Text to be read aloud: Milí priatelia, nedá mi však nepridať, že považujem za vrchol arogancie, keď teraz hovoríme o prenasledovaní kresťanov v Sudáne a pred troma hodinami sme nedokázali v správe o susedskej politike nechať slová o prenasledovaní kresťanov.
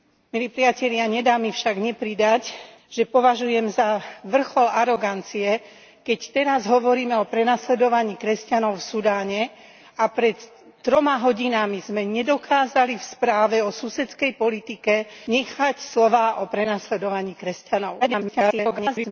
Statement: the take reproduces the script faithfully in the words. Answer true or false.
false